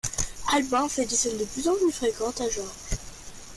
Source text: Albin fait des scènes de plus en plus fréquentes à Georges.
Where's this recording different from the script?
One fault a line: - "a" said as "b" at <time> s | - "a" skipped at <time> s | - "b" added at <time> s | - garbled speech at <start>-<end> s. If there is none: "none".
none